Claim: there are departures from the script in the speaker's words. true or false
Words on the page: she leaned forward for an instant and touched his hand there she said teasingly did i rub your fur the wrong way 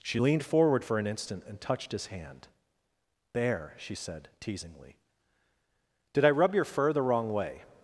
false